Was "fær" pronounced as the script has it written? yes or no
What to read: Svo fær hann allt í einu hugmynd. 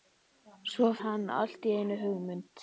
no